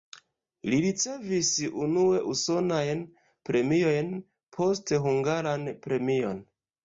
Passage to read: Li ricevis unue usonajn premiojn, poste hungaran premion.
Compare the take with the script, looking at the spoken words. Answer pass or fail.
pass